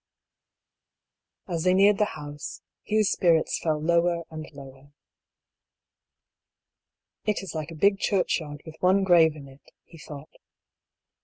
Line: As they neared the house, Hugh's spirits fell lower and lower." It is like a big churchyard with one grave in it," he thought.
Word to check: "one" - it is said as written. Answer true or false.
true